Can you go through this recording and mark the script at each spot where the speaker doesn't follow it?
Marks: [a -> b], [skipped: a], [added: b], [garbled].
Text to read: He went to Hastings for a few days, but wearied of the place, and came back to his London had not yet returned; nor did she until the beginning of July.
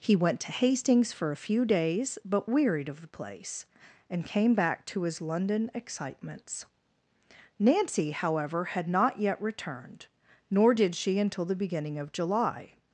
He went to Hastings for a few days, but wearied of the place, and came back to his London [added: excitements Nancy however] had not yet returned; nor did she until the beginning of July.